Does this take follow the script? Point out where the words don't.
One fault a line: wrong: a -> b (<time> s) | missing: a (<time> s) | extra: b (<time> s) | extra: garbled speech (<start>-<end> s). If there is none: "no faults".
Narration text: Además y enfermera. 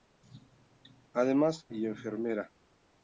no faults